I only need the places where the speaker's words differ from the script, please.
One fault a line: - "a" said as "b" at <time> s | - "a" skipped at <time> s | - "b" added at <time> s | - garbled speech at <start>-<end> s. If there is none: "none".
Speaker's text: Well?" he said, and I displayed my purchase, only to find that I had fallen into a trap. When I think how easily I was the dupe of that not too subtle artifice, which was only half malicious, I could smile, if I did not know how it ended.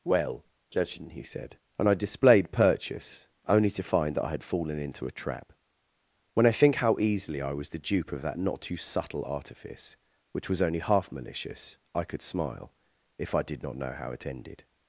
- "judging" added at 0.7 s
- "my" skipped at 2.5 s